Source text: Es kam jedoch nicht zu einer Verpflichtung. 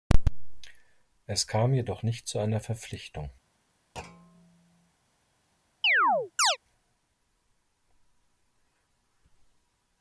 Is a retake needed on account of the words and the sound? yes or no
yes